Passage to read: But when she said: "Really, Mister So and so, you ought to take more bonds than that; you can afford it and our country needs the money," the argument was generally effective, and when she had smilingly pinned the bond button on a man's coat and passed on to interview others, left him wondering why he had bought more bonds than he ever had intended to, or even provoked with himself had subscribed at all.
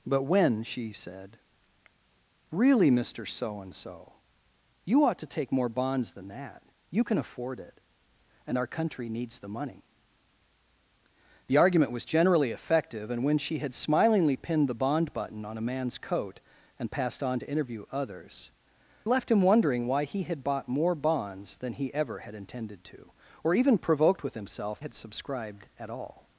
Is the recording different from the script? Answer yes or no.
no